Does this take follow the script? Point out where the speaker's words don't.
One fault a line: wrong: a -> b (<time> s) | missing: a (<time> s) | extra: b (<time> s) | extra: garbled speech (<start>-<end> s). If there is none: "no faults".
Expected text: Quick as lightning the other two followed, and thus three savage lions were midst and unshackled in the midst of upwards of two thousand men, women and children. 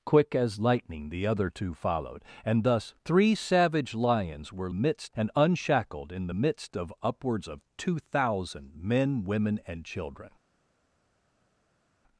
no faults